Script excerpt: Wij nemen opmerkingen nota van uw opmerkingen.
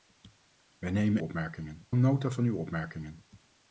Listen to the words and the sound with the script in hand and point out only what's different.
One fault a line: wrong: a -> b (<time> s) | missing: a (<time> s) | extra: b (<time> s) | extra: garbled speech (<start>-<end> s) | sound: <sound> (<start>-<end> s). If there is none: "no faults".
no faults